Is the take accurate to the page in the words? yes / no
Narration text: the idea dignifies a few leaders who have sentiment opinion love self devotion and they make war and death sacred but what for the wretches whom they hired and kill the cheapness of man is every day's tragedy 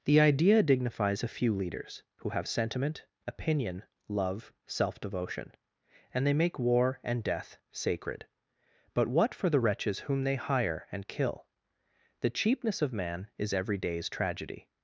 no